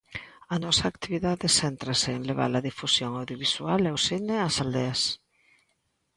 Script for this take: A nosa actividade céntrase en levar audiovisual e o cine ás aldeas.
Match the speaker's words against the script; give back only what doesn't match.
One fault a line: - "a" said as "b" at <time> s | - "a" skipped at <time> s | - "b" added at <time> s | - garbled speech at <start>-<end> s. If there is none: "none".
- "a difusión" added at 2.5 s